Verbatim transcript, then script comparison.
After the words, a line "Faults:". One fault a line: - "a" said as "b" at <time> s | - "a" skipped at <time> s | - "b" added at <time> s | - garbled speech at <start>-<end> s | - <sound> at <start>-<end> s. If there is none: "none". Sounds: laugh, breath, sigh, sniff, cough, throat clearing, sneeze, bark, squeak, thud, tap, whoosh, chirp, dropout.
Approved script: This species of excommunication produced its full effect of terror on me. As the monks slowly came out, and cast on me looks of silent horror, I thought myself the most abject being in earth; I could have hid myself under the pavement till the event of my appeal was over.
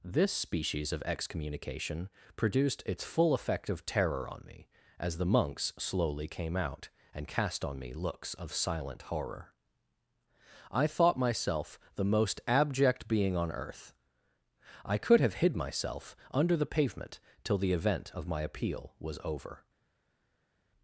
This species of excommunication produced its full effect of terror on me. As the monks slowly came out, and cast on me looks of silent horror, I thought myself the most abject being on earth; I could have hid myself under the pavement till the event of my appeal was over.
Faults:
- "in" said as "on" at 13.3 s